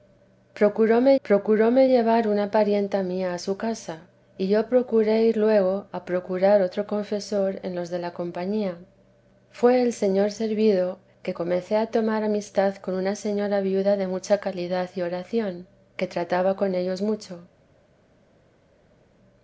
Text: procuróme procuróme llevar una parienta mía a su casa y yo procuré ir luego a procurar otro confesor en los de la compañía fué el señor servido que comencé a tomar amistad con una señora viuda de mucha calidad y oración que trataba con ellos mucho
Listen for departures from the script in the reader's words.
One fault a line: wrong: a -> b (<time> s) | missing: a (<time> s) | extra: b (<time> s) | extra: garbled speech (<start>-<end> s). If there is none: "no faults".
no faults